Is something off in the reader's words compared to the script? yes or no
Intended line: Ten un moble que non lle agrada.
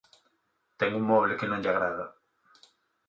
no